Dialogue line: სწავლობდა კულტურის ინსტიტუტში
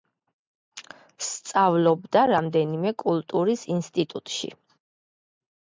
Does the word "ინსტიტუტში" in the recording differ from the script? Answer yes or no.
no